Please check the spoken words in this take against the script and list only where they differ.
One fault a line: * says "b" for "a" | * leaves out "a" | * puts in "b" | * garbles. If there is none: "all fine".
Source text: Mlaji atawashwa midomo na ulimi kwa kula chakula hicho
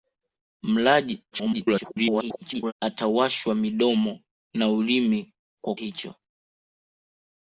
* garbles
* leaves out "kula chakula"